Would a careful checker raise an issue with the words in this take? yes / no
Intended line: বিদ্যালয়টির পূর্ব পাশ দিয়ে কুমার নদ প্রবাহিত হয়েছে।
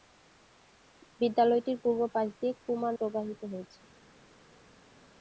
yes